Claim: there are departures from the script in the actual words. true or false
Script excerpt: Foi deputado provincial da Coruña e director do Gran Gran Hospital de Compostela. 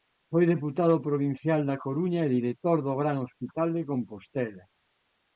true